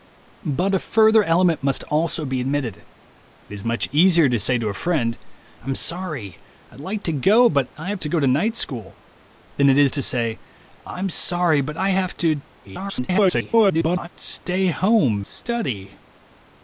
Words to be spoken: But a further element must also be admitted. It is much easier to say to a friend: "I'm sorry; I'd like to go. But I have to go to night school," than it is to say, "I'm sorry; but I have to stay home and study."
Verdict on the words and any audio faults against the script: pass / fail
fail